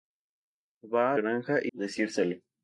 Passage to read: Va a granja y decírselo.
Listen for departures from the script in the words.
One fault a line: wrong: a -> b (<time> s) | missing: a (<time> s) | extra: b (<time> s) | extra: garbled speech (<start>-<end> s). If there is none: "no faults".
no faults